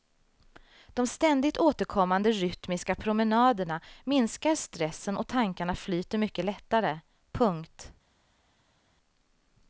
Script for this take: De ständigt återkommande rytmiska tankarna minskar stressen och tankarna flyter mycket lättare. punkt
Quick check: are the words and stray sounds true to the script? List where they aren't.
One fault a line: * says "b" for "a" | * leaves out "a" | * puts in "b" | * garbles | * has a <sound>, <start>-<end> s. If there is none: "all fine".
* says "promenaderna" for "tankarna"